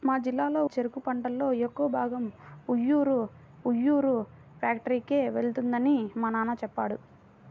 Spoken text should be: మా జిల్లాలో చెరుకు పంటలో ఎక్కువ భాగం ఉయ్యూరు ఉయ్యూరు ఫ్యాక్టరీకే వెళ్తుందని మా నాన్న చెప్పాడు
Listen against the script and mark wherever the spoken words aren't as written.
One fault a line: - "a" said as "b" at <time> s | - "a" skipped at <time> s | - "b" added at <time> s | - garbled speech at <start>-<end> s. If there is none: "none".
none